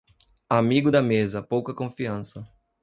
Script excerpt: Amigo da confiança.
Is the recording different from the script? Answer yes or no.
yes